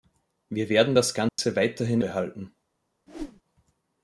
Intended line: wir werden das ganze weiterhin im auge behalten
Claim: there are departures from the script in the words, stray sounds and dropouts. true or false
true